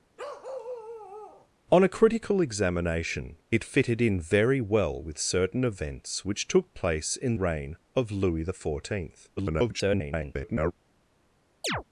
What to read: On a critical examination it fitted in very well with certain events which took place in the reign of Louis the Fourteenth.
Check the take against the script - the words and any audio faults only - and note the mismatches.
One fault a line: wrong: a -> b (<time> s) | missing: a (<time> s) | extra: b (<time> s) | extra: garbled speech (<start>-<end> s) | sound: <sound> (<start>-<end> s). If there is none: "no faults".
sound: bark (0.2-1.5 s)
missing: the (7.3 s)
extra: garbled speech (9.4-10.7 s)
sound: chirp (11.6-11.8 s)